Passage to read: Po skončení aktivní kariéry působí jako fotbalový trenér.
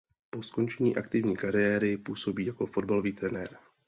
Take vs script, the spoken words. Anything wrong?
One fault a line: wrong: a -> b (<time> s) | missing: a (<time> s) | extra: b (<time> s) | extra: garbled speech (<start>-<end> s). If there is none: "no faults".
no faults